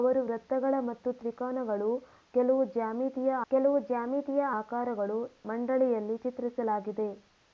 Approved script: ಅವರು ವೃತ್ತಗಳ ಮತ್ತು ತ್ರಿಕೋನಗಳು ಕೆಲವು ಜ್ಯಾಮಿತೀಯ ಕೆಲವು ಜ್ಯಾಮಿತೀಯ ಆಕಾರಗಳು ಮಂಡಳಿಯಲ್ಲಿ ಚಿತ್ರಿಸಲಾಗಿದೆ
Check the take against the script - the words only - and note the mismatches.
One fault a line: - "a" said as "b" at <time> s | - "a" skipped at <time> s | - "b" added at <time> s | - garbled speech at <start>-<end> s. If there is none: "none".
none